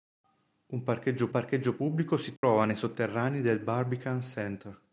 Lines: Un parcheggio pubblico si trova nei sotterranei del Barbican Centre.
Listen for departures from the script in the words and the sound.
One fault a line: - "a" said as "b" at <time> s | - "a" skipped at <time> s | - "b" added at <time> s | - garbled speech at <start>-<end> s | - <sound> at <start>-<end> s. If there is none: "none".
- "parcheggio" added at 1.3 s
- dropout at 2.4-2.4 s